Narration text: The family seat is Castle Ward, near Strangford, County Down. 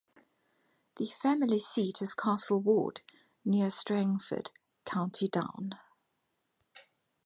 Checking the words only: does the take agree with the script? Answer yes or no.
yes